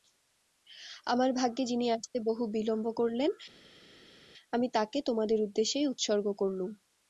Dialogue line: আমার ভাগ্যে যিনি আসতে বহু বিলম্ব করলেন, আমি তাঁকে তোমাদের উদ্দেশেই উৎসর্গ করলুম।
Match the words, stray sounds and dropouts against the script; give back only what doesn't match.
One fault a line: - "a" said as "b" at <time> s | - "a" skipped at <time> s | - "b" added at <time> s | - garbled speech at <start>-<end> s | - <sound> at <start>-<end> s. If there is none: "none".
none